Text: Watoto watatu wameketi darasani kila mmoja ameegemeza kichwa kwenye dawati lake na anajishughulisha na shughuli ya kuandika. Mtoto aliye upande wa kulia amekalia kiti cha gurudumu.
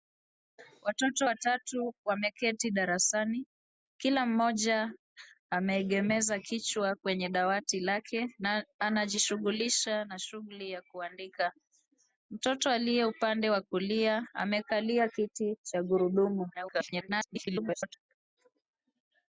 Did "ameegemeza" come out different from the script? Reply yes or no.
no